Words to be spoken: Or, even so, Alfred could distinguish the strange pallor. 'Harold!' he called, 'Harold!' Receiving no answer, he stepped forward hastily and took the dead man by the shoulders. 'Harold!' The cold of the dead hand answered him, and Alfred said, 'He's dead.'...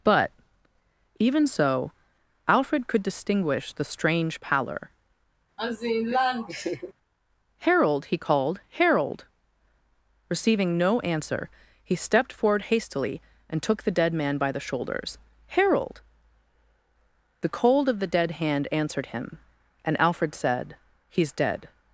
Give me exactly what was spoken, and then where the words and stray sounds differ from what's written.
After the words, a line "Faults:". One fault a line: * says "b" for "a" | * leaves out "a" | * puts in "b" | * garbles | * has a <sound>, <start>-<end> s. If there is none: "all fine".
But, even so, Alfred could distinguish the strange pallor. 'Harold!' he called, 'Harold!' Receiving no answer, he stepped forward hastily and took the dead man by the shoulders. 'Harold!' The cold of the dead hand answered him, and Alfred said, 'He's dead.'...
Faults:
* says "But" for "Or"
* has a laugh, 5.6-6.9 s